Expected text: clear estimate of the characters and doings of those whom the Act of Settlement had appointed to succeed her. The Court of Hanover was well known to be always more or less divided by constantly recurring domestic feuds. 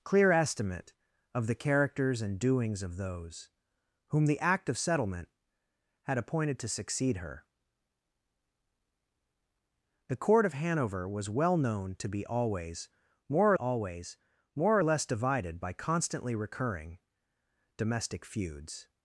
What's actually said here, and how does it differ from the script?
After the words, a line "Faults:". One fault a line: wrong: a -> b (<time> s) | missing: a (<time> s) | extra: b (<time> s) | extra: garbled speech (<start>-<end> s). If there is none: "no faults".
clear estimate of the characters and doings of those whom the Act of Settlement had appointed to succeed her. The Court of Hanover was well known to be always more always more or less divided by constantly recurring domestic feuds.
Faults:
extra: always more (13.6 s)